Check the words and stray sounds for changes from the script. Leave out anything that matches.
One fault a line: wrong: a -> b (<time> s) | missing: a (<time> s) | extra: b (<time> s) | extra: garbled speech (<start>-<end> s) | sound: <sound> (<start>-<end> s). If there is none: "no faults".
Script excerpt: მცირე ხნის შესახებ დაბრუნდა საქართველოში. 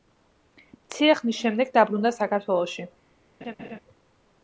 wrong: შესახებ -> შემდეგ (1.4 s)
sound: laugh (3.4-3.8 s)